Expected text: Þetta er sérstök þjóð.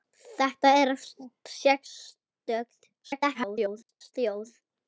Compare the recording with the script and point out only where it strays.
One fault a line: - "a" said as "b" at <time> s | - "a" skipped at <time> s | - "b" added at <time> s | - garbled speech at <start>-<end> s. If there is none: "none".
- garbled speech at 3.0-4.1 s